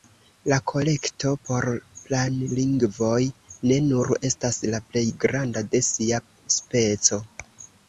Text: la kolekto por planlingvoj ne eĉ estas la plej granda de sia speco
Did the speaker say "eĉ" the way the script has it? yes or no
no